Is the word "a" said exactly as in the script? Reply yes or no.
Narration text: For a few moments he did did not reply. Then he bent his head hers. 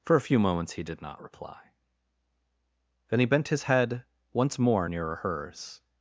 yes